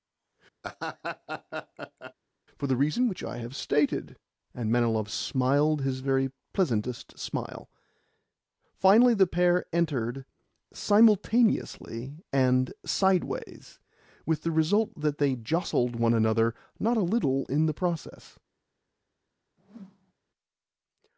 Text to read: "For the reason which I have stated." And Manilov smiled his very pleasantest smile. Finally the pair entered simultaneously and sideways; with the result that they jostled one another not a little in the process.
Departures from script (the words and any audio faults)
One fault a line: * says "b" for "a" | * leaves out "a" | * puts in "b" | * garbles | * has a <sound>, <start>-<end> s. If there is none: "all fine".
* has a laugh, 0.6-2.1 s
* has a whoosh, 19.6-20.1 s